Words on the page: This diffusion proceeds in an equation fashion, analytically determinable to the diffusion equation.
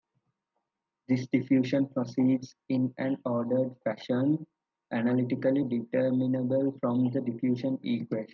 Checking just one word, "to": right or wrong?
wrong